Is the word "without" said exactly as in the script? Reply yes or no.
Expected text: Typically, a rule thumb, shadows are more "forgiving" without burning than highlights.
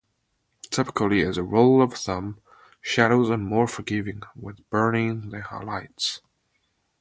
no